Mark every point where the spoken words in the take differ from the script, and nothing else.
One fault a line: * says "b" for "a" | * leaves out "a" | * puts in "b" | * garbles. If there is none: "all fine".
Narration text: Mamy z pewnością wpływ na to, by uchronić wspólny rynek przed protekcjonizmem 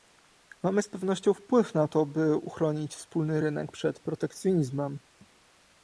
all fine